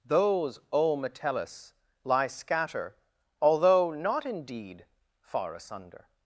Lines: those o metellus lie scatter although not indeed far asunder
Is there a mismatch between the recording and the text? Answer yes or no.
no